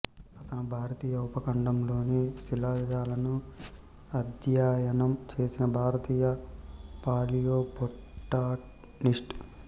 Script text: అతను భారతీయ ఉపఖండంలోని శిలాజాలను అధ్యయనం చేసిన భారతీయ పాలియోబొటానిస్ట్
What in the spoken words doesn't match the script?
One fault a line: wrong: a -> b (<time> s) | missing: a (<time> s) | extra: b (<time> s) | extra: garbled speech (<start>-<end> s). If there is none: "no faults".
no faults